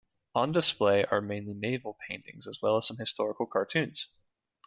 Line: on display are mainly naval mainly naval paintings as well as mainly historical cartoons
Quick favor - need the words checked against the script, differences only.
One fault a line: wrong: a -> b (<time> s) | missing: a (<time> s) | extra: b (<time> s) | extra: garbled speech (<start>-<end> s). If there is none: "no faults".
missing: mainly naval (1.9 s)
wrong: mainly -> some (2.8 s)